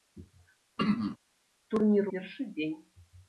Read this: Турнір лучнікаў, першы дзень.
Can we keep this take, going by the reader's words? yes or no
no